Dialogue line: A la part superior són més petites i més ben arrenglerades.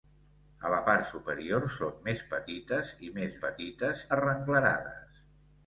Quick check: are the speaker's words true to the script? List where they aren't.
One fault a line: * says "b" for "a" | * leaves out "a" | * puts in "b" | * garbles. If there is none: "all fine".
* says "petites" for "ben"